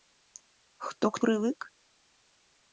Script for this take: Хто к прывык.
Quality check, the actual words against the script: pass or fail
pass